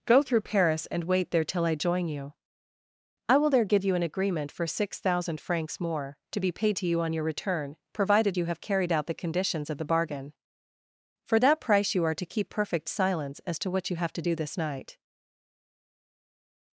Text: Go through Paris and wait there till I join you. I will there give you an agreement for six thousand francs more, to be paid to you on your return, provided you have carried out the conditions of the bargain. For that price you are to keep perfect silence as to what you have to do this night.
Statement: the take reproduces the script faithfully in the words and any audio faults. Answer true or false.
true